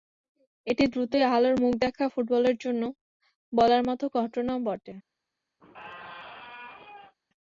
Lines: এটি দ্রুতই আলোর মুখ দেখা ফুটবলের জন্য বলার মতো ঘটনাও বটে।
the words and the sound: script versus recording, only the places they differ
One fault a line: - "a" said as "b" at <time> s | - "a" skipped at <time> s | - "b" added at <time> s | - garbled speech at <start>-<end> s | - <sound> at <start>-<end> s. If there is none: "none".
- squeak at 5.6-7.1 s